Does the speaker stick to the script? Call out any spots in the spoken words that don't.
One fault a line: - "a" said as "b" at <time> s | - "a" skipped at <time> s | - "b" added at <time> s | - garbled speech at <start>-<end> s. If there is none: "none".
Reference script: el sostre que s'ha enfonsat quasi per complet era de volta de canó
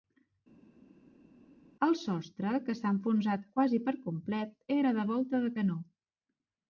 none